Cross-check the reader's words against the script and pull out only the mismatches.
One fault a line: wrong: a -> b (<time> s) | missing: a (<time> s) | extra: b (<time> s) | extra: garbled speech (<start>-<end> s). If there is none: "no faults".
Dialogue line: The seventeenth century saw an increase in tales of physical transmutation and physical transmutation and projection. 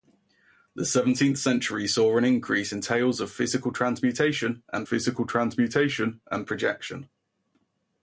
no faults